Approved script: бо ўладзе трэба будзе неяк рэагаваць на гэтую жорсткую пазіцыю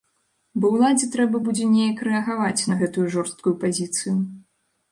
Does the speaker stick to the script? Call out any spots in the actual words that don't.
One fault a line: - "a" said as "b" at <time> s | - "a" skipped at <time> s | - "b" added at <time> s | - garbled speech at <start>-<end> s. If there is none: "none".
none